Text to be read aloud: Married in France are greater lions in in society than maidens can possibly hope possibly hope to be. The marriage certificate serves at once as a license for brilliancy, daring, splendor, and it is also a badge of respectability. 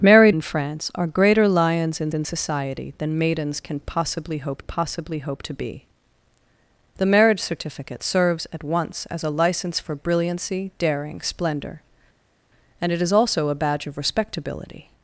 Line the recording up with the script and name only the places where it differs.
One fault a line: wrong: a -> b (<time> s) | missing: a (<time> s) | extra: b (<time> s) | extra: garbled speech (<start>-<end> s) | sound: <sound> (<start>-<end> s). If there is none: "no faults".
no faults